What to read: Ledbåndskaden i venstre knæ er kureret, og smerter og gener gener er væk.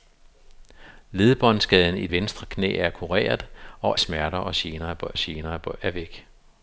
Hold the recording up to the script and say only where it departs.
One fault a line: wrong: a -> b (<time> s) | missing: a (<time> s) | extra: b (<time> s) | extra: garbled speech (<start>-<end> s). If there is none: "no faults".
no faults